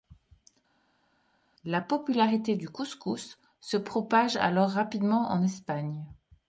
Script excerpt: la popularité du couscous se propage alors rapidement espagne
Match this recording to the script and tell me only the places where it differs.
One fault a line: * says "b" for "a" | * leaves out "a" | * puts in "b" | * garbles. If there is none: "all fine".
* puts in "en"